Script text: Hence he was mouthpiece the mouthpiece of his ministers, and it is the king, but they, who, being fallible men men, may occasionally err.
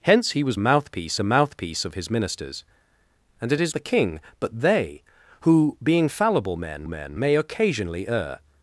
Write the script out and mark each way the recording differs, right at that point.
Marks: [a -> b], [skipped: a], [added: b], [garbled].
Hence he was mouthpiece the mouthpiece of his ministers, and it is the king, but they, who, being fallible men men, may occasionally err.